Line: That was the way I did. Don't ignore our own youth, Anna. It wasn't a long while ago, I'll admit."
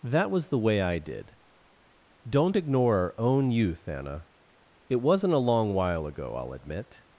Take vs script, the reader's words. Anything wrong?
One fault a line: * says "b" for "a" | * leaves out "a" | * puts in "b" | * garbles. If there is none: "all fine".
all fine